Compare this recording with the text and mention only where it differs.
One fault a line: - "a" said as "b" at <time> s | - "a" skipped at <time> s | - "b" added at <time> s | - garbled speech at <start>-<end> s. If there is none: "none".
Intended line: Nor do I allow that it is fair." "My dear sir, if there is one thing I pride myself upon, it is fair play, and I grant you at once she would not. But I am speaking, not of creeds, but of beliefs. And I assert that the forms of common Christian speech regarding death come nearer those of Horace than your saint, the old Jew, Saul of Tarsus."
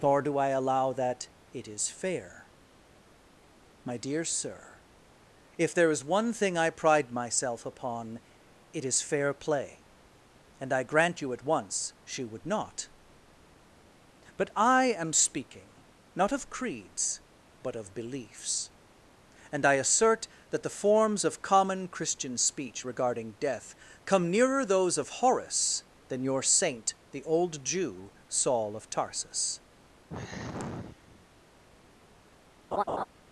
none